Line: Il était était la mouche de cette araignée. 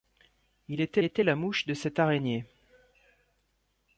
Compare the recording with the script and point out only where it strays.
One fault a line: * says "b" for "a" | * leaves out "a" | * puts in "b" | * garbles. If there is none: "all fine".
all fine